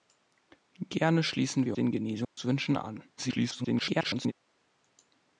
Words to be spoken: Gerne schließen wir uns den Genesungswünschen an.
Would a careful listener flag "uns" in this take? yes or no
yes